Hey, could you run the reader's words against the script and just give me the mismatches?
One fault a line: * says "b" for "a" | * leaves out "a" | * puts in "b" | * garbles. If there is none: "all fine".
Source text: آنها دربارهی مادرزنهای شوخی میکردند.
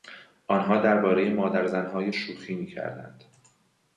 all fine